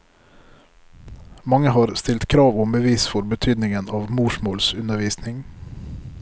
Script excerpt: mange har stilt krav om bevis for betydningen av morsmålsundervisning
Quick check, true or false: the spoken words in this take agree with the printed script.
true